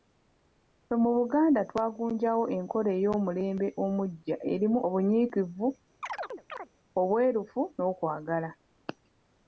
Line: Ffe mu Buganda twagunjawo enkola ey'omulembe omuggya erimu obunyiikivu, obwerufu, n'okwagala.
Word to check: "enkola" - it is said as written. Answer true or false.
true